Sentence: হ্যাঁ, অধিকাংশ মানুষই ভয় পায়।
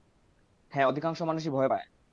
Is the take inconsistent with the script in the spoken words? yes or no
no